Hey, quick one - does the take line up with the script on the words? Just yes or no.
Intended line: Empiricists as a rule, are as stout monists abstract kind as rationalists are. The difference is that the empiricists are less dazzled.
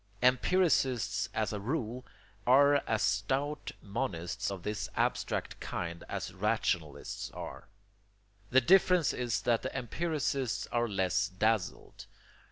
no